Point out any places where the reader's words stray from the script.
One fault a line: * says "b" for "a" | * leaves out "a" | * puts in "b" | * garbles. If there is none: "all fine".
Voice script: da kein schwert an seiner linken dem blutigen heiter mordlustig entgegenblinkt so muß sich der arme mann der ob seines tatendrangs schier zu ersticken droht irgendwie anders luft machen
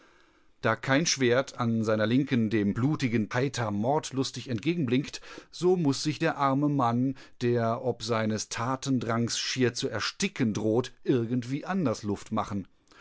all fine